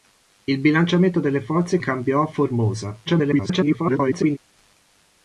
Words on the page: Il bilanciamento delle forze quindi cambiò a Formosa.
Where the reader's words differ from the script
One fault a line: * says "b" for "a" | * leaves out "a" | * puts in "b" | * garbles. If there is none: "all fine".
* leaves out "quindi"
* garbles